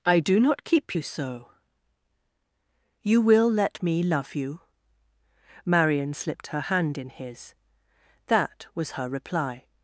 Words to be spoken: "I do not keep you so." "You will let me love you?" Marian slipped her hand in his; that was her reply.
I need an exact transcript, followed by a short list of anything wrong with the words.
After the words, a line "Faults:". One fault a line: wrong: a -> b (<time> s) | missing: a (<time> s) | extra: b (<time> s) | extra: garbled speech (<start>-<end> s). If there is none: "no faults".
"I do not keep you so." "You will let me love you?" Marian slipped her hand in his; that was her reply.
Faults:
no faults